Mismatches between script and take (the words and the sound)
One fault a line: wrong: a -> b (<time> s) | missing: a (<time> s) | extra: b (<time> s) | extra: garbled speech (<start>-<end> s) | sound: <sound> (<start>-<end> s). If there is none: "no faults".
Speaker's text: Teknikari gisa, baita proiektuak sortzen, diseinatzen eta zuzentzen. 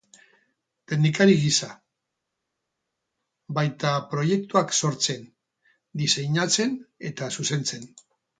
no faults